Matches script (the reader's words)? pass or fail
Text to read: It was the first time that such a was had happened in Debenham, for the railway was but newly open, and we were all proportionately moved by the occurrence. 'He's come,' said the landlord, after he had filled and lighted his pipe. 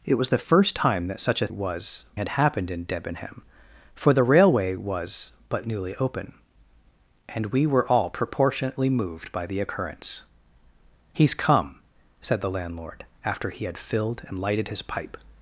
pass